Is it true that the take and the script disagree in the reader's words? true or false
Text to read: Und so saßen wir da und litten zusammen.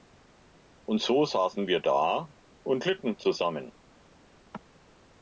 false